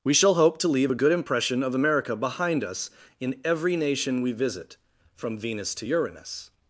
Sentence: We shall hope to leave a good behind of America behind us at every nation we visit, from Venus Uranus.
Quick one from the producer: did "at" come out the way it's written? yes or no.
no